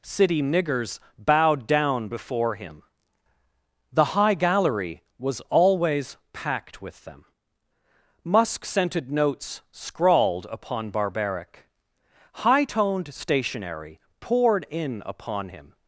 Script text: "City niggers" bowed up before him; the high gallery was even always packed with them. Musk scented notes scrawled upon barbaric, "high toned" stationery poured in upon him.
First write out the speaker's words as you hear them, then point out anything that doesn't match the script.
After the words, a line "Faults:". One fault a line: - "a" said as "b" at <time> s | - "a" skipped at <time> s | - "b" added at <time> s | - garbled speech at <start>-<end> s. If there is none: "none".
"City niggers" bowed down before him; the high gallery was always packed with them. Musk scented notes scrawled upon barbaric, "high toned" stationery poured in upon him.
Faults:
- "up" said as "down" at 1.7 s
- "even" skipped at 5.4 s